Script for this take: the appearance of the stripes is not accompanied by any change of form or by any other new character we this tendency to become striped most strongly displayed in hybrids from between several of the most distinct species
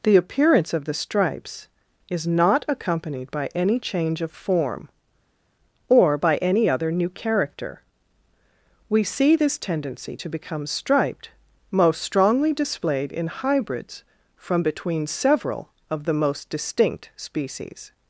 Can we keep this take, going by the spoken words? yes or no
no